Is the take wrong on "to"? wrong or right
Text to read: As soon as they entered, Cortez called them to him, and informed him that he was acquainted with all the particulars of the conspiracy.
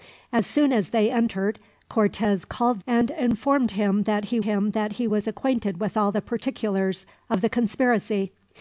wrong